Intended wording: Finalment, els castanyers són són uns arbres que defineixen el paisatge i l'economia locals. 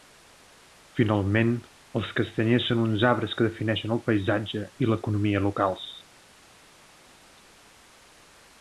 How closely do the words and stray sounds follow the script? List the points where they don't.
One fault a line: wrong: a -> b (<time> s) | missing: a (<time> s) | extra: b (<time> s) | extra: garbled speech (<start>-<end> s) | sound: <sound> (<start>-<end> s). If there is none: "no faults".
missing: són (2.8 s)